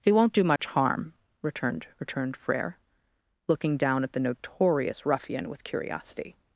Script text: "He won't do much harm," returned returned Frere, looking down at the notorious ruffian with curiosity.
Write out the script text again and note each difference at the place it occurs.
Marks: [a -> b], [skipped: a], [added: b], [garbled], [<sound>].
"He won't do much [dropout] harm," returned returned Frere, looking down at the notorious ruffian with curiosity.